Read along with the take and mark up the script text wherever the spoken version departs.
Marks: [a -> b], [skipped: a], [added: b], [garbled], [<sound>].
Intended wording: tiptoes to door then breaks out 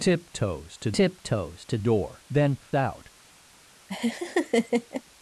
tiptoes to [added: tiptoes to] door then [skipped: breaks] out [laugh]